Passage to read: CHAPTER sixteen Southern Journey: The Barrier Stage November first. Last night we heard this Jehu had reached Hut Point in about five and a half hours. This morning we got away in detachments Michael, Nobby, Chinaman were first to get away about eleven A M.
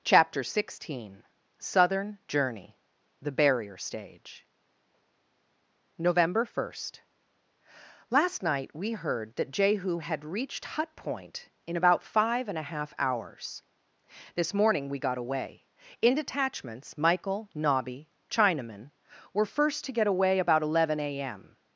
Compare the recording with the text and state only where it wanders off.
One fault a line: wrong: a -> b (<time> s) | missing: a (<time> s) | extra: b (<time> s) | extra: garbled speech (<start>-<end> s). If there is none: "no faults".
wrong: this -> that (9.4 s)